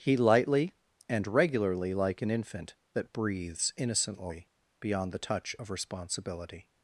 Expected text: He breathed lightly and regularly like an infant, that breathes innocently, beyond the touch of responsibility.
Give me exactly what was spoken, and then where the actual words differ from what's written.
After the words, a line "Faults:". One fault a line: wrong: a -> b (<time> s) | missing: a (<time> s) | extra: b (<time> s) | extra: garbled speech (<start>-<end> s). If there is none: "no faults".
He lightly and regularly like an infant, that breathes innocently, beyond the touch of responsibility.
Faults:
missing: breathed (0.2 s)